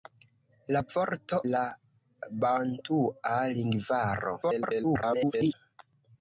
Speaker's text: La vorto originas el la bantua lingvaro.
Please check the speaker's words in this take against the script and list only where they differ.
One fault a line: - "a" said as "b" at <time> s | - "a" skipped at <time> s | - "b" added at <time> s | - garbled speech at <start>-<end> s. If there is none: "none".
- "originas el" skipped at 1.4 s
- garbled speech at 4.4-5.5 s